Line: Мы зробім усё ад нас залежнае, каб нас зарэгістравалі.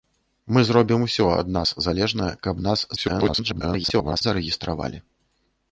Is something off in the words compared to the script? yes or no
yes